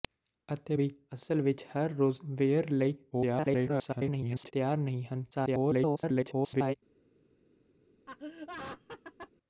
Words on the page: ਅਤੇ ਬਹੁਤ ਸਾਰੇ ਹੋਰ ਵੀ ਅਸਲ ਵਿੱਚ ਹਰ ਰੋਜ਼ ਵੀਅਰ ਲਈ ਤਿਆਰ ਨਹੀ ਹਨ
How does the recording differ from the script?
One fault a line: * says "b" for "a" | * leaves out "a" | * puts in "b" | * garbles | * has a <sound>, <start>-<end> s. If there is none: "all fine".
* leaves out "ਬਹੁਤ ਸਾਰੇ ਹੋਰ"
* garbles
* garbles
* has a laugh, 8.1-9.3 s